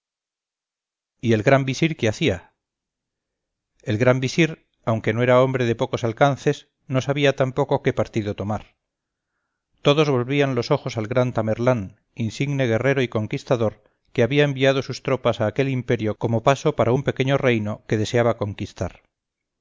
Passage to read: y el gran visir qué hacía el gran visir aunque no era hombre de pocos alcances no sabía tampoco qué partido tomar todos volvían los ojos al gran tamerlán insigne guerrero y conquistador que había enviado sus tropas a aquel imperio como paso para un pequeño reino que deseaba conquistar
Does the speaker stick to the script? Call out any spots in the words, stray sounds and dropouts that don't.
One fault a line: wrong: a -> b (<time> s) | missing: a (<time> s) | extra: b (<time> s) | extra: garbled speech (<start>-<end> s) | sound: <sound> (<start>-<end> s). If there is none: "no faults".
no faults